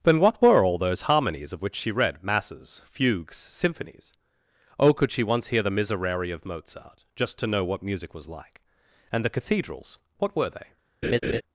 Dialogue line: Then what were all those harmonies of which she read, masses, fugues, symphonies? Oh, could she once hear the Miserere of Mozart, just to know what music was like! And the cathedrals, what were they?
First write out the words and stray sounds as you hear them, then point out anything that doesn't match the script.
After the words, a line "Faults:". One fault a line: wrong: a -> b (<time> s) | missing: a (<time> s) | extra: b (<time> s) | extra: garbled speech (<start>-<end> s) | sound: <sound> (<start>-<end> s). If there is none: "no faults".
Then what were all those harmonies of which she read, masses, fugues, symphonies? Oh, could she once hear the Miserere of Mozart, just to know what music was like! And the cathedrals, what were they?
Faults:
sound: laugh (11.0-11.4 s)